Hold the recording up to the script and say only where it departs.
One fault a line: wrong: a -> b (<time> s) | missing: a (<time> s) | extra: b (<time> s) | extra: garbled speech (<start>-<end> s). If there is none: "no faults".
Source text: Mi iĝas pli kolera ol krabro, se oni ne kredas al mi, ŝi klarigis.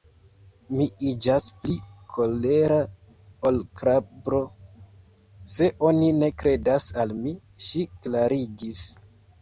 no faults